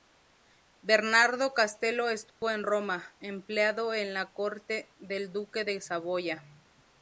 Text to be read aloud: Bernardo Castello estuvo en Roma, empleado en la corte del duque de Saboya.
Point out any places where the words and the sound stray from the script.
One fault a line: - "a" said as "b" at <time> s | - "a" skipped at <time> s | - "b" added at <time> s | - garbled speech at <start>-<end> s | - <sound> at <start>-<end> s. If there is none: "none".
- dropout at 2.3-2.4 s